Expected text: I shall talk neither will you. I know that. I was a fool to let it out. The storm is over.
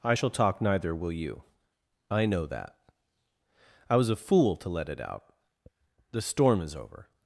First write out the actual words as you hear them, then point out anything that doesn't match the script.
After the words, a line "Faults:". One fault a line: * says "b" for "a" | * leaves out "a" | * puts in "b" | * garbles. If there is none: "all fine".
I shall talk neither will you. I know that. I was a fool to let it out. The storm is over.
Faults:
all fine